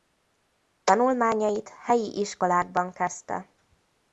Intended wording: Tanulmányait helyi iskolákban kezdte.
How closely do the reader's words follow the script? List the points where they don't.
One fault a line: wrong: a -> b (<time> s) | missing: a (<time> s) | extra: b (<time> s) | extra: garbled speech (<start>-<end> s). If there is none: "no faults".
no faults